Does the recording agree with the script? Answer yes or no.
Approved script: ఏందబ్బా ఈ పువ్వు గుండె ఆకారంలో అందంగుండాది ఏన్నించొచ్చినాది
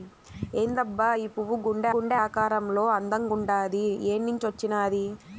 no